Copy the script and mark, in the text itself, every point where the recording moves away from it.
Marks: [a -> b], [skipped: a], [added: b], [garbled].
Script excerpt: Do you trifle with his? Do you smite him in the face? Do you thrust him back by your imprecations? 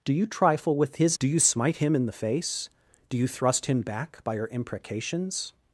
Do you trifle with his? Do you smite him in the face? Do you thrust him back by your imprecations?